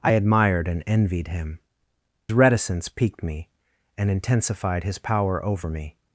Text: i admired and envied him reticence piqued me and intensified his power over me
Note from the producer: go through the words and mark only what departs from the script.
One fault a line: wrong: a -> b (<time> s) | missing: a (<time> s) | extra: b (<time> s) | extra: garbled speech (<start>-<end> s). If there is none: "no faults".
no faults